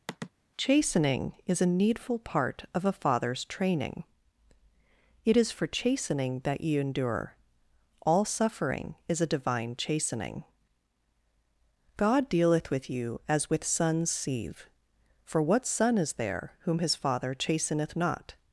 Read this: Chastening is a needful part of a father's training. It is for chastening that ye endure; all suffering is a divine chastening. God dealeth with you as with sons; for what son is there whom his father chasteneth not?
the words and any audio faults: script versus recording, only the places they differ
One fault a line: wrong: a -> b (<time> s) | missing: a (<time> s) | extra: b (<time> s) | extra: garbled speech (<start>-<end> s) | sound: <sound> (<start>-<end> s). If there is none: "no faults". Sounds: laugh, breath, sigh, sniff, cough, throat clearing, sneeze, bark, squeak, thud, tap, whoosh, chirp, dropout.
sound: sigh (0.1-0.3 s)
extra: sieve (14.1 s)